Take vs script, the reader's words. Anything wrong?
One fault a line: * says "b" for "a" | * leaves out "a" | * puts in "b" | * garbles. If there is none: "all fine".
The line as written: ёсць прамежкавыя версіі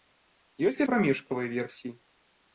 all fine